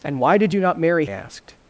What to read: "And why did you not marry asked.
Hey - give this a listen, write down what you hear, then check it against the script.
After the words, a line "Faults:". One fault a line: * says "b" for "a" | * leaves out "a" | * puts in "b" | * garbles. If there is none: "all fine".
"And why did you not marry asked.
Faults:
all fine